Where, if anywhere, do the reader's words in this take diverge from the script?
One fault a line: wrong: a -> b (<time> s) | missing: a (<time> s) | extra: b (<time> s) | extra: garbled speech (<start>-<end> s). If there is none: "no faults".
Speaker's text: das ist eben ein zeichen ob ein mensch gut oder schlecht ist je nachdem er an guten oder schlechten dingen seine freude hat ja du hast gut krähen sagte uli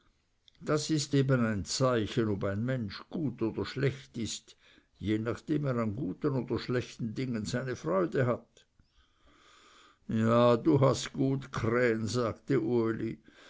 no faults